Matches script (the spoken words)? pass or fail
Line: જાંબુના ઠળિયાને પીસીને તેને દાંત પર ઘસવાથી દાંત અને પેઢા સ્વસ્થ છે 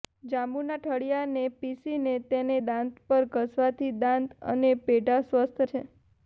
pass